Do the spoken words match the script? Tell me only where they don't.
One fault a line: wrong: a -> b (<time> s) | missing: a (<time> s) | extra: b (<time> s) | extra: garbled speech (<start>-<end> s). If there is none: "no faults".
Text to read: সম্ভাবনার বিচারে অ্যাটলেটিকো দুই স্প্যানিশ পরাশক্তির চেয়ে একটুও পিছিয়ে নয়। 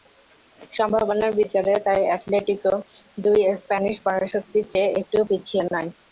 extra: তাই (1.9 s)